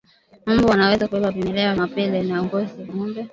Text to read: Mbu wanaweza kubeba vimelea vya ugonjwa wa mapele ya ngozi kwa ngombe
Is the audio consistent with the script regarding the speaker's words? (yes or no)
no